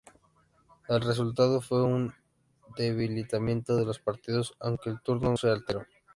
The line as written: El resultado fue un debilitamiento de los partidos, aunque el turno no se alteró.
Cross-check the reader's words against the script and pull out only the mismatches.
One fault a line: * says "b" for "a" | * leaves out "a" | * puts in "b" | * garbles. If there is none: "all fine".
* leaves out "no"